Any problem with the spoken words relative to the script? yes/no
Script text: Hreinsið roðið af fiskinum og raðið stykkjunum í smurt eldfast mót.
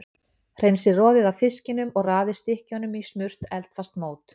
no